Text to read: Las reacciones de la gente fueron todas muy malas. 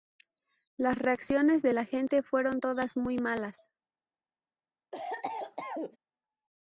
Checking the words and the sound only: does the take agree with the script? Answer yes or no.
no